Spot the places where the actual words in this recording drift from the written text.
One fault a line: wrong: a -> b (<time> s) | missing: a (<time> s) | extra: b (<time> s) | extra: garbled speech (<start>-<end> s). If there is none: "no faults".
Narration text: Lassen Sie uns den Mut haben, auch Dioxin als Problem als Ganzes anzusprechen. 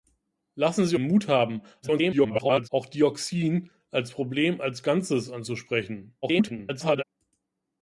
missing: uns den (1.0 s)
extra: garbled speech (1.8-2.7 s)
extra: garbled speech (6.2-7.0 s)